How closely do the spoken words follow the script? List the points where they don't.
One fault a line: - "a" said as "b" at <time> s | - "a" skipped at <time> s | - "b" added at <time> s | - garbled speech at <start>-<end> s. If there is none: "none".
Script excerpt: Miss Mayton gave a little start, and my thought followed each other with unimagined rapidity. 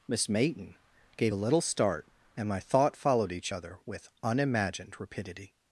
none